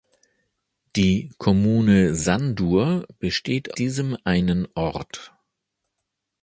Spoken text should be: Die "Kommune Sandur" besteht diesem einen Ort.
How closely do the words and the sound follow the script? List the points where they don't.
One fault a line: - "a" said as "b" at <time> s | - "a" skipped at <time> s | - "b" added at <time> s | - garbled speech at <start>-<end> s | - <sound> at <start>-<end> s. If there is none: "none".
none